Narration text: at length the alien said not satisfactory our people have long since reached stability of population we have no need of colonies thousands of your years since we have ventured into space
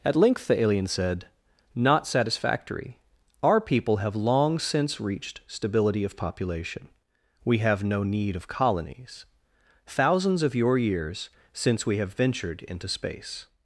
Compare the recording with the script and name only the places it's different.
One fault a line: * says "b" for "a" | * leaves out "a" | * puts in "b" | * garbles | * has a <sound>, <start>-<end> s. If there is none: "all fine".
all fine